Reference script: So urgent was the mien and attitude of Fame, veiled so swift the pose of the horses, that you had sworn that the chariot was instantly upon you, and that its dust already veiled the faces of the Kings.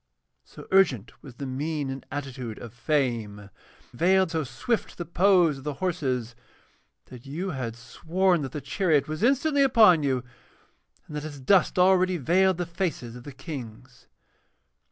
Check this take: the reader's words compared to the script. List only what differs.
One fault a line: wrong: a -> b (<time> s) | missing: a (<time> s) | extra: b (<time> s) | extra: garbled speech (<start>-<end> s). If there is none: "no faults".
no faults